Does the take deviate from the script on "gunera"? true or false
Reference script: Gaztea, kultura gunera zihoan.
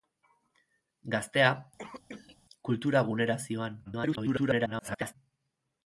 false